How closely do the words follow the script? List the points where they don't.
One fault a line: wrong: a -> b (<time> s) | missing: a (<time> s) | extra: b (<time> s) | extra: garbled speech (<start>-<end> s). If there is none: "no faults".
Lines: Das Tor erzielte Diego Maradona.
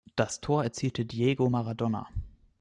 no faults